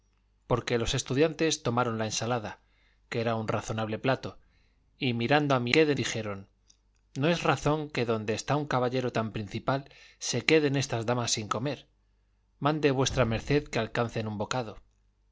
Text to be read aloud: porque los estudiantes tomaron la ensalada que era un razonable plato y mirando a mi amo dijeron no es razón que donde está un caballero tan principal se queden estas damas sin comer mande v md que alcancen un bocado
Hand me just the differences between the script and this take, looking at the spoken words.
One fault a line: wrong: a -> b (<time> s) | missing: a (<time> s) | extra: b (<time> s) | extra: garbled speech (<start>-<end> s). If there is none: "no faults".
wrong: amo -> queden (5.7 s)